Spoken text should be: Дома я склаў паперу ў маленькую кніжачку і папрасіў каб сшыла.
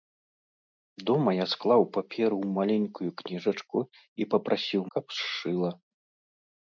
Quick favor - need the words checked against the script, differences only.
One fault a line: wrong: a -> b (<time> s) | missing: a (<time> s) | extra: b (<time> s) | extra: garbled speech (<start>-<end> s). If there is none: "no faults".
no faults